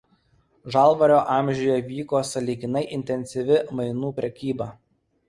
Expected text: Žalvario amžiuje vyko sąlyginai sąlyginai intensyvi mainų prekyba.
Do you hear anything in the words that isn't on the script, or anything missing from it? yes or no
yes